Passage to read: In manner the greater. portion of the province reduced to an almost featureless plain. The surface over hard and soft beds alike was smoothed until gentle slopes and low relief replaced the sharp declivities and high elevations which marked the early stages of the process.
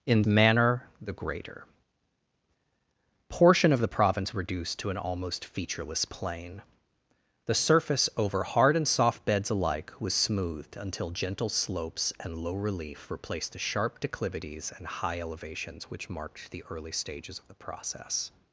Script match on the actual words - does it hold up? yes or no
yes